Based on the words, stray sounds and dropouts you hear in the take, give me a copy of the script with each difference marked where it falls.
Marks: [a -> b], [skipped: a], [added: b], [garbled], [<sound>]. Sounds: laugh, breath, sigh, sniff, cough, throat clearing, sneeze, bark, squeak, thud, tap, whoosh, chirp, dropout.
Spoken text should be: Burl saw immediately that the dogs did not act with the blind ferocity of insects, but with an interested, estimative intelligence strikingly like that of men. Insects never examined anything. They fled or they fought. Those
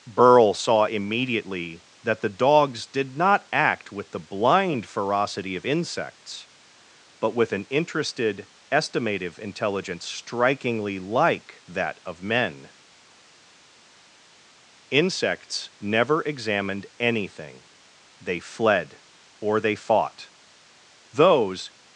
Burl saw immediately that the dogs did not act with the blind ferocity of insects, but with an interested, estimative intelligence strikingly like that of men. Insects never examined anything. They fled or they fought. Those